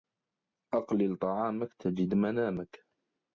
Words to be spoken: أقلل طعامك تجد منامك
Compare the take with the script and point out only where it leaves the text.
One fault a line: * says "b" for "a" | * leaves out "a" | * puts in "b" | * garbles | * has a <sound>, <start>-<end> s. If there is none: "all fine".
all fine